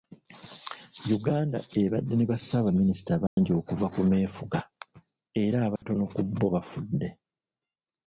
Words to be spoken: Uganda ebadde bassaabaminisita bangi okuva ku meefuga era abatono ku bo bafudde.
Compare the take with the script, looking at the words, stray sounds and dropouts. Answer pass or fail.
fail